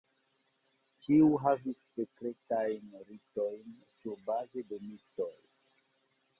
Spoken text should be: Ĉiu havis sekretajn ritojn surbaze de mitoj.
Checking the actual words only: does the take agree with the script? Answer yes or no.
yes